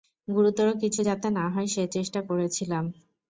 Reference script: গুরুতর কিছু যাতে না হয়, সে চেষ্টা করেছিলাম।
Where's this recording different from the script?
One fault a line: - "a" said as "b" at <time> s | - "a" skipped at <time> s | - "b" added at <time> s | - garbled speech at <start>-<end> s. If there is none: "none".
none